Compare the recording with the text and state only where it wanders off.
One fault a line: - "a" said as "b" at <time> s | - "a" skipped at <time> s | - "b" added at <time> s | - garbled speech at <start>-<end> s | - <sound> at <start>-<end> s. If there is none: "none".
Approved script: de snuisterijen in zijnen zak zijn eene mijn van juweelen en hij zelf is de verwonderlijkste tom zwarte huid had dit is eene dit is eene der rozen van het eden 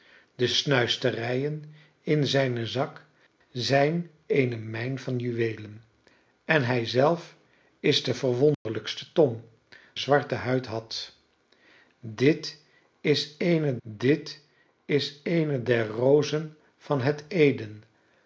- dropout at 8.5-8.7 s